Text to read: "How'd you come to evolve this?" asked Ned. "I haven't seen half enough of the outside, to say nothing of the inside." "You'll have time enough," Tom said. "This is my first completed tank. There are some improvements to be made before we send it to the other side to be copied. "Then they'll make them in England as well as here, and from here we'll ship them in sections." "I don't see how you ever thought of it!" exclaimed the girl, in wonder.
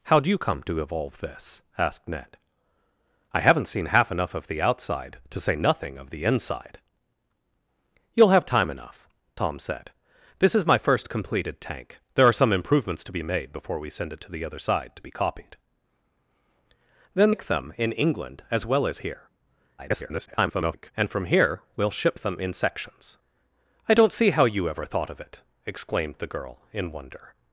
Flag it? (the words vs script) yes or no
yes